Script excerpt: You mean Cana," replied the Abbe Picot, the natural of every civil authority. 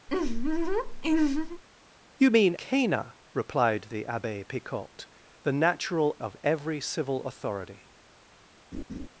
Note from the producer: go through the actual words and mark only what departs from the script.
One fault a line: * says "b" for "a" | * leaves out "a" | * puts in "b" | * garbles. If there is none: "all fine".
all fine